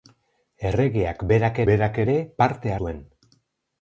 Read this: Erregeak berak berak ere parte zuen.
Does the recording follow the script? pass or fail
pass